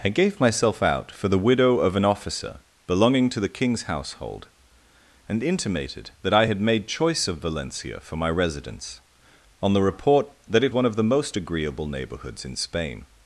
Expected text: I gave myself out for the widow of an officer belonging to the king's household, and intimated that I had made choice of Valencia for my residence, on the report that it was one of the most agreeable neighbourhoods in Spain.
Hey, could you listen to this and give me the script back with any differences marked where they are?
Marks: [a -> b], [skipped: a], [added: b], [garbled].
I gave myself out for the widow of an officer belonging to the king's household, and intimated that I had made choice of Valencia for my residence, on the report that it [skipped: was] one of the most agreeable neighbourhoods in Spain.